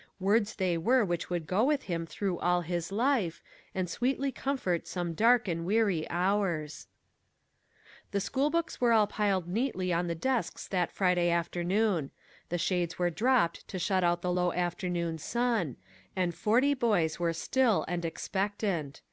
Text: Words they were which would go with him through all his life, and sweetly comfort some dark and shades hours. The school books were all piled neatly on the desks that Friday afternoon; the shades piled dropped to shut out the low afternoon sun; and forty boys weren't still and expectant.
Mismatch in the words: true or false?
true